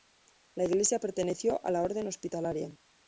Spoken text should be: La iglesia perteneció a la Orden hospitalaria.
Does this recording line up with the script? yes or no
yes